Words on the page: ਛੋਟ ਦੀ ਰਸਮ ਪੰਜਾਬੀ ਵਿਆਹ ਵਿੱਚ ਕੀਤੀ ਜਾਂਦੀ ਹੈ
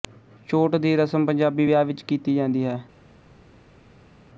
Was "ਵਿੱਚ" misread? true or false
false